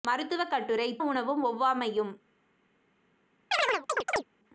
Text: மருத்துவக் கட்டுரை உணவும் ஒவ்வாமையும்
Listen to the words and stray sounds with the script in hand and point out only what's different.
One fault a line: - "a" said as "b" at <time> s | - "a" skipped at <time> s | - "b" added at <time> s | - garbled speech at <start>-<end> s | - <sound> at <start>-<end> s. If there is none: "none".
- chirp at 3.5-4.3 s